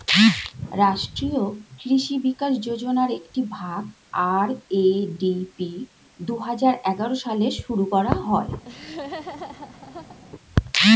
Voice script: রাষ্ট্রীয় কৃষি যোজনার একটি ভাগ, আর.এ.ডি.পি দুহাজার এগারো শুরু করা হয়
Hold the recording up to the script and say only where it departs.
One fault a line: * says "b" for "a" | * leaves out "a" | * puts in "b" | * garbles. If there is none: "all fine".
* puts in "বিকাশ"
* puts in "সালে"